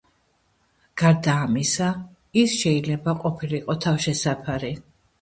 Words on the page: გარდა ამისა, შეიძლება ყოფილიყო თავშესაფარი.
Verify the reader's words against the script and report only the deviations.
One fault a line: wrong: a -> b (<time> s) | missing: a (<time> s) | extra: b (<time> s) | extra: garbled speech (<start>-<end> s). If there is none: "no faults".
extra: ის (2.5 s)